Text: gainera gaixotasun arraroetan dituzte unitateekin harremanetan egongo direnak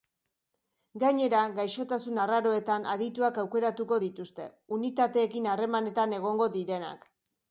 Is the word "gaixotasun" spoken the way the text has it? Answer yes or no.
yes